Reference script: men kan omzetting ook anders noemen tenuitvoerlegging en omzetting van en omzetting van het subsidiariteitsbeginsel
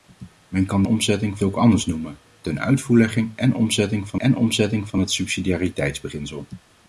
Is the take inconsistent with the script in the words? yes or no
no